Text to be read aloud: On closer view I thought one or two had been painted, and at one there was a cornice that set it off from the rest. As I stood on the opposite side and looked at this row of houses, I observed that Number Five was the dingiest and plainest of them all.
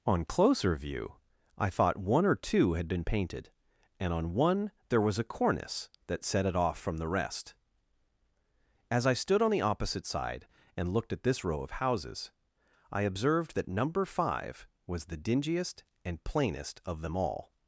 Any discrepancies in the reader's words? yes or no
yes